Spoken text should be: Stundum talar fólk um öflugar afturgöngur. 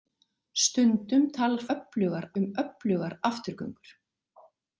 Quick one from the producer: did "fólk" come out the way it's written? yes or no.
no